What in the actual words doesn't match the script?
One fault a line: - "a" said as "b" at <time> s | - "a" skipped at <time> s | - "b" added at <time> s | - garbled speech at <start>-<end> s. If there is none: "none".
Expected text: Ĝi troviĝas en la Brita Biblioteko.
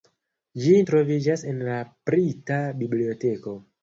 none